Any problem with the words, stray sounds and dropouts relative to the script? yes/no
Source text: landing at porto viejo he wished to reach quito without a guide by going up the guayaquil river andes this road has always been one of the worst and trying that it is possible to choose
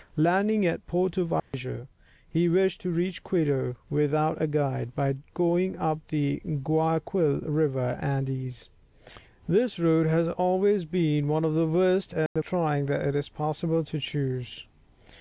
yes